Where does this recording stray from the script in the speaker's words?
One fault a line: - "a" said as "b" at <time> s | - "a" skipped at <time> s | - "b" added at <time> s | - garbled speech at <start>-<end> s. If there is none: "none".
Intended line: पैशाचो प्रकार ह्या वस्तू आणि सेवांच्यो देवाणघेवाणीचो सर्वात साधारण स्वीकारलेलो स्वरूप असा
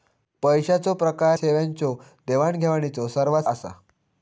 - "ह्या वस्तू आणि" skipped at 1.4 s
- "साधारण स्वीकारलेलो स्वरूप" skipped at 3.4 s